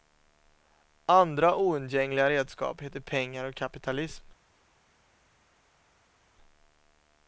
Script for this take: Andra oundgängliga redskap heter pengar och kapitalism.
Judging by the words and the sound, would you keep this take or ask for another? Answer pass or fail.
pass